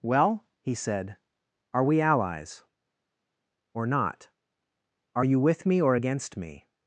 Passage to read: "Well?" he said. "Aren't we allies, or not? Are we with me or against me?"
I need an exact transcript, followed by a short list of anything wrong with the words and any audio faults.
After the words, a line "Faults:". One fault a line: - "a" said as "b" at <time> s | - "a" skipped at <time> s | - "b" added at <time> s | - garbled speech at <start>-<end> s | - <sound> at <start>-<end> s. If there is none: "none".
"Well?" he said. "Are we allies, or not? Are you with me or against me?"
Faults:
- "Aren't" said as "Are" at 1.7 s
- "we" said as "you" at 5.2 s